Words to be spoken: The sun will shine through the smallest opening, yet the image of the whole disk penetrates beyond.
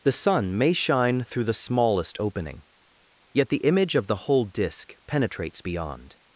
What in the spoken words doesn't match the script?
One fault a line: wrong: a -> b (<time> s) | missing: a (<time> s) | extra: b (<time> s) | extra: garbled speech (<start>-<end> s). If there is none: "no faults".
wrong: will -> may (0.6 s)